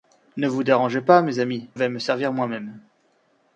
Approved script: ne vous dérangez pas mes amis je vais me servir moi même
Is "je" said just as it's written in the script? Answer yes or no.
no